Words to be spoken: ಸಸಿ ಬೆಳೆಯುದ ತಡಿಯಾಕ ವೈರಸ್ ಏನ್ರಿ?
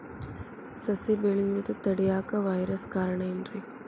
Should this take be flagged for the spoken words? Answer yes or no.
yes